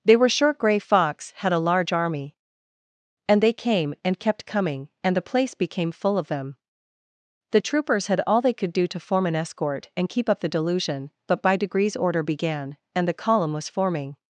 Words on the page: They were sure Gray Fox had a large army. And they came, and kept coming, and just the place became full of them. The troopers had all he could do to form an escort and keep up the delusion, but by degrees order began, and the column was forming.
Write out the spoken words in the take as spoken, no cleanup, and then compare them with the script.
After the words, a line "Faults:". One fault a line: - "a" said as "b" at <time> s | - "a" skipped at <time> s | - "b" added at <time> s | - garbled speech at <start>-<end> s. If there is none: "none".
They were sure Gray Fox had a large army. And they came, and kept coming, and the place became full of them. The troopers had all they could do to form an escort and keep up the delusion, but by degrees order began, and the column was forming.
Faults:
- "just" skipped at 5.2 s
- "he" said as "they" at 8.4 s